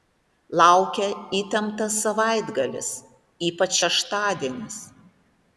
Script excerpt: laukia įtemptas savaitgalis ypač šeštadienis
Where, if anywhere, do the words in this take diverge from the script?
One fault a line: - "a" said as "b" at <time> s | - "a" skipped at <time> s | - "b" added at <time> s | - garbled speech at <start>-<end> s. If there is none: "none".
none